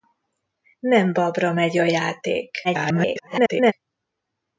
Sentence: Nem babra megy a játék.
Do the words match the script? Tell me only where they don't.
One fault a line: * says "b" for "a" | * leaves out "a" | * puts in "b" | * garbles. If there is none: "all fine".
* garbles